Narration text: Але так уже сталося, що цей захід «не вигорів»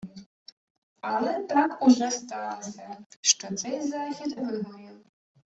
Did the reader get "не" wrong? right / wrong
wrong